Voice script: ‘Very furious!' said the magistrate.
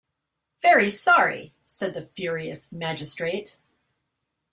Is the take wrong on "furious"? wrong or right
wrong